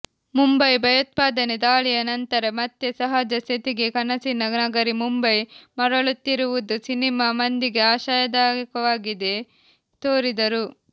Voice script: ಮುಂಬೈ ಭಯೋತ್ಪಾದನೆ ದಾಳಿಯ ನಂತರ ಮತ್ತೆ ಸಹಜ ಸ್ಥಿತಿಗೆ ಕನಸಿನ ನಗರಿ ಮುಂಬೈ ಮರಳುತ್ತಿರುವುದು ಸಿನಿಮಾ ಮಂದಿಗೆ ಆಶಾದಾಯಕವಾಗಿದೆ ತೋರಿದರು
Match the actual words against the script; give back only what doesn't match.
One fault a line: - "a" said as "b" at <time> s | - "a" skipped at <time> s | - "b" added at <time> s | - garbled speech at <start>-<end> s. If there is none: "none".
none